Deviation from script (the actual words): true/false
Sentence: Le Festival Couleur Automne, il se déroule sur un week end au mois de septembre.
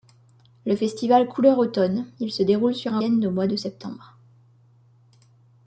true